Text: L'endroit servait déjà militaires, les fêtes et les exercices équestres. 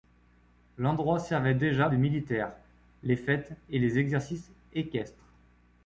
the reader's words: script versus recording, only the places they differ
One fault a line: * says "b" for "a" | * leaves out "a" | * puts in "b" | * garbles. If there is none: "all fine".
all fine